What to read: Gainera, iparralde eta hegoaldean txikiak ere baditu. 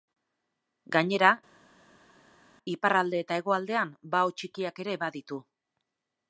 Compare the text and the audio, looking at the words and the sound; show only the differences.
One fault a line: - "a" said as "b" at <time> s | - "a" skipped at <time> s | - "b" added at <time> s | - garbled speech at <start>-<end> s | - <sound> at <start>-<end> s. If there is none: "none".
- "bao" added at 4.2 s